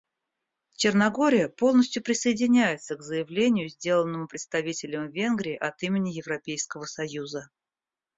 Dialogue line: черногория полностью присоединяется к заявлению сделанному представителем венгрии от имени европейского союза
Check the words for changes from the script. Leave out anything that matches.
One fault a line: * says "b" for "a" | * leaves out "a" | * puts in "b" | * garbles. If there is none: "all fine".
all fine